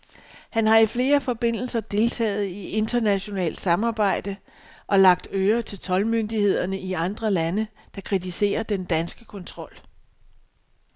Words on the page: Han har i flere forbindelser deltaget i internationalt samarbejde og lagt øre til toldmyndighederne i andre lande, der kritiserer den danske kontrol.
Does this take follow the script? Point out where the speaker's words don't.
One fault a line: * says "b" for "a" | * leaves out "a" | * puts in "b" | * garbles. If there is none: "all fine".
all fine